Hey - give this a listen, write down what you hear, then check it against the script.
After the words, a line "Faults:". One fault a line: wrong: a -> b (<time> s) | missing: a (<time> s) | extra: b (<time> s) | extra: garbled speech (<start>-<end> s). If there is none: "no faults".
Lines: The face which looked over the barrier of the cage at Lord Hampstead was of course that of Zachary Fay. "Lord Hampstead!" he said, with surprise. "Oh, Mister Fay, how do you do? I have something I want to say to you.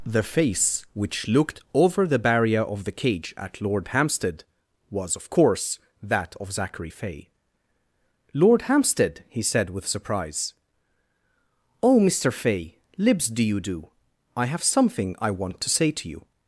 The face which looked over the barrier of the cage at Lord Hampstead was of course that of Zachary Fay. "Lord Hampstead!" he said, with surprise. "Oh, Mister Fay, libs do you do? I have something I want to say to you.
Faults:
wrong: how -> libs (13.0 s)